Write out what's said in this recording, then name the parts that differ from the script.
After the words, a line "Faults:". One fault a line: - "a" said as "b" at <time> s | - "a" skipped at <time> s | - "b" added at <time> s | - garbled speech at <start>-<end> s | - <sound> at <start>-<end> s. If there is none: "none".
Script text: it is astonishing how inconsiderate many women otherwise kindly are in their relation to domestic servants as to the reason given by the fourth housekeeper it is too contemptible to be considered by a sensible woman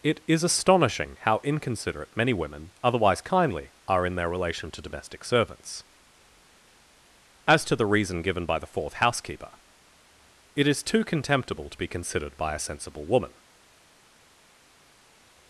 it is astonishing how inconsiderate many women otherwise kindly are in their relation to domestic servants as to the reason given by the fourth housekeeper it is too contemptible to be considered by a sensible woman
Faults:
none